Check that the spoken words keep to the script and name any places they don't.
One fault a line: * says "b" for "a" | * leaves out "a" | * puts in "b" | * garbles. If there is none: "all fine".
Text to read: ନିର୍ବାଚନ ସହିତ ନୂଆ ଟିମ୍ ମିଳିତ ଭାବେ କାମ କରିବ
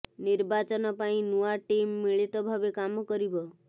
* says "ପାଇଁ" for "ସହିତ"